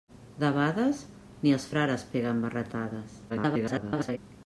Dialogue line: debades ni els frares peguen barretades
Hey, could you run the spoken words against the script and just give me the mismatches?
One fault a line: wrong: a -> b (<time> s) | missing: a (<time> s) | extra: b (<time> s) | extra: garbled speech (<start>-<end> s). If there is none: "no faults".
extra: garbled speech (3.3-4.2 s)